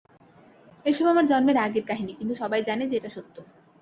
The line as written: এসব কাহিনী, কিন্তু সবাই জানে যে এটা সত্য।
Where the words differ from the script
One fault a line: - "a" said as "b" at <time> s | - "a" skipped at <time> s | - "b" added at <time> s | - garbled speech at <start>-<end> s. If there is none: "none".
- "আমার জন্মের আগের" added at 1.1 s